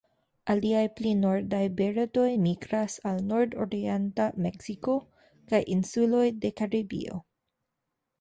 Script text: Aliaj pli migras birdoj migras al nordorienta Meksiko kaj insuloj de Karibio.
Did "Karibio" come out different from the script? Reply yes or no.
no